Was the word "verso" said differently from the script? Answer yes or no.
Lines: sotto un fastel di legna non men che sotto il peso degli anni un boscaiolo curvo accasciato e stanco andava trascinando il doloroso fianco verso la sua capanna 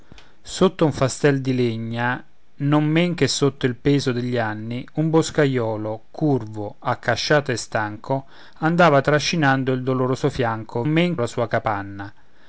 yes